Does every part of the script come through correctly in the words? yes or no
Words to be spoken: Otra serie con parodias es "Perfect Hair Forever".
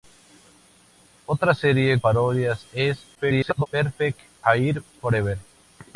no